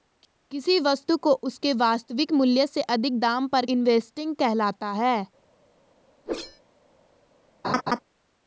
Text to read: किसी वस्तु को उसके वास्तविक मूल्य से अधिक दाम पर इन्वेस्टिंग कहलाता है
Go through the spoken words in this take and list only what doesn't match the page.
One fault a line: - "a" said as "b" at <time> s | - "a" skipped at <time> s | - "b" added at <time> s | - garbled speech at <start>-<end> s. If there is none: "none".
none